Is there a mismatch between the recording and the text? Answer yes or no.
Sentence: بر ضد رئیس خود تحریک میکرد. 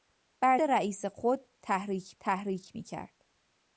yes